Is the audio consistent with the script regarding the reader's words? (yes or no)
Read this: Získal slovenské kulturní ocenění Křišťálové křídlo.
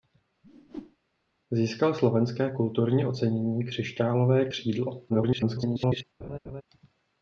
no